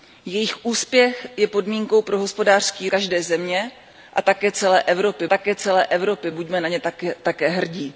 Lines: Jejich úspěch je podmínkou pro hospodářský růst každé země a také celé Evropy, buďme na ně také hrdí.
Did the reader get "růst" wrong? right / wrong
wrong